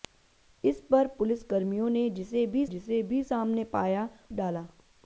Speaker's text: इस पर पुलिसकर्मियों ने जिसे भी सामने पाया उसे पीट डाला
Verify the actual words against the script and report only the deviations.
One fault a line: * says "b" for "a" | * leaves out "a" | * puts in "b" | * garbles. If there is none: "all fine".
* puts in "जिसे भी"
* leaves out "उसे पीट"